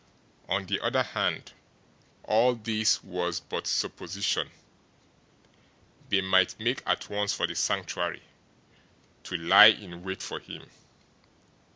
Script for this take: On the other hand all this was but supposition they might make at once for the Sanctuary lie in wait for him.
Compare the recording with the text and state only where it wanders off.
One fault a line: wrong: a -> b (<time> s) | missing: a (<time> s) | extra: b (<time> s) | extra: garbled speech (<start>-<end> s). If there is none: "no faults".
extra: to (9.2 s)